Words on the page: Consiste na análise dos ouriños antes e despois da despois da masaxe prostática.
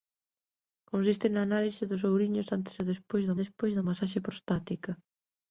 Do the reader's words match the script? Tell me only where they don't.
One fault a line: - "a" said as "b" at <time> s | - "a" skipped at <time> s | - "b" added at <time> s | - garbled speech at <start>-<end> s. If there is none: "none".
none